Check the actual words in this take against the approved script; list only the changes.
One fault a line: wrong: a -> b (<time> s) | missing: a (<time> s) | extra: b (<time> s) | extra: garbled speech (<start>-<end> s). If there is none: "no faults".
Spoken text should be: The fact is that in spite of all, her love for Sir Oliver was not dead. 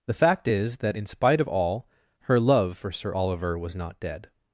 no faults